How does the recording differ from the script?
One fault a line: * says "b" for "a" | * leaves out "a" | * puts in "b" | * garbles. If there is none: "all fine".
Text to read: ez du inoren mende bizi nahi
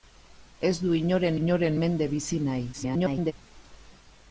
* puts in "inoren"
* garbles